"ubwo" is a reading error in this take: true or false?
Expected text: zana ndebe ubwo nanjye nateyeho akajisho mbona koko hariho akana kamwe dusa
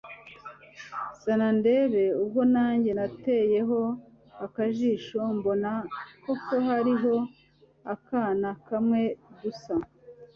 false